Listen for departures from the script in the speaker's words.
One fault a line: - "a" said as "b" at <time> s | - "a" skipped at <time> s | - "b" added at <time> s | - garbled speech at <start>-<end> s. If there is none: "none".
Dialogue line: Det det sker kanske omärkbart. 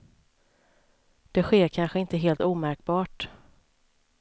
- "det" skipped at 1.4 s
- "inte helt" added at 2.0 s